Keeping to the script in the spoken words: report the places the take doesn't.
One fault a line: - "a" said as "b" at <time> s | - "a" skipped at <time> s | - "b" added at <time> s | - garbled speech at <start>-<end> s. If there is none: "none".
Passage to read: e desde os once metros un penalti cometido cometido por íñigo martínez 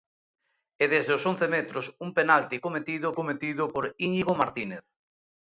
none